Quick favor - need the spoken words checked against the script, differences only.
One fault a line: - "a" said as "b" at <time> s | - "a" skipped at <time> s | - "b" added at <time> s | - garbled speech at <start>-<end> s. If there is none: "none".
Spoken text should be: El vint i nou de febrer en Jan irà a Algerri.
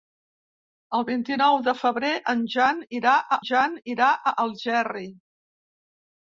- "Jan irà a" added at 3.5 s